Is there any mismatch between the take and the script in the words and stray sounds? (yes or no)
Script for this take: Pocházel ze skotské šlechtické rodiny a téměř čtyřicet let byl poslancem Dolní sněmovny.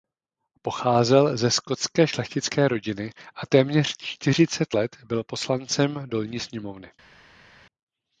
no